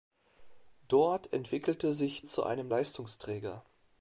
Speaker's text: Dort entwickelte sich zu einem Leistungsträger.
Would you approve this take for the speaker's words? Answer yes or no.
yes